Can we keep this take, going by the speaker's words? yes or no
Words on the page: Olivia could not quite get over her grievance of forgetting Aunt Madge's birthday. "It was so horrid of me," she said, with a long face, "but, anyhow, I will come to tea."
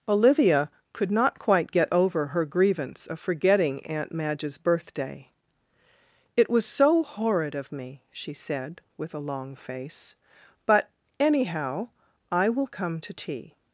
yes